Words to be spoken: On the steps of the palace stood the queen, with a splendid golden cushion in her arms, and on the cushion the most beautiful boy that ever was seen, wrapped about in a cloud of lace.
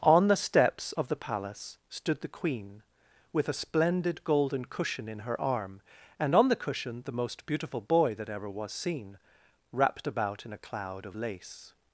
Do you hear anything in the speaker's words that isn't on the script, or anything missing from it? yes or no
yes